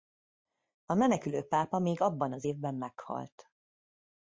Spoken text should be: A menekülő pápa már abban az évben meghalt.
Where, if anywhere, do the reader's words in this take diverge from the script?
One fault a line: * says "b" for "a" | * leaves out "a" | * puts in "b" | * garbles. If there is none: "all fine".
* says "még" for "már"